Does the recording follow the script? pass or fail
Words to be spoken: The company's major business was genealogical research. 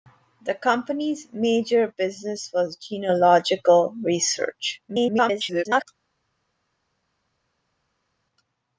fail